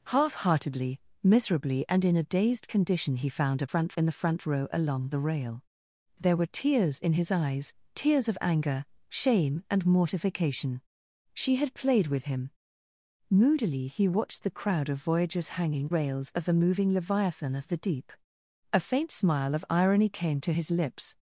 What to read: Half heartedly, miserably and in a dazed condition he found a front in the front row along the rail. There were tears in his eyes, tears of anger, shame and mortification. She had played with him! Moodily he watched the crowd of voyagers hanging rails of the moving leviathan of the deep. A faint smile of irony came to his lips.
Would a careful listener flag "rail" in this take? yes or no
no